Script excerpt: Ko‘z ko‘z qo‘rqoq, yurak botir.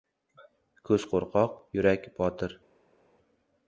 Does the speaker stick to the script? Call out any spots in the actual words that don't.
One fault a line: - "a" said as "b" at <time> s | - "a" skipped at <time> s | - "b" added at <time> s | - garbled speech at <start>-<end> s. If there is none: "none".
- "ko‘z" skipped at 1.1 s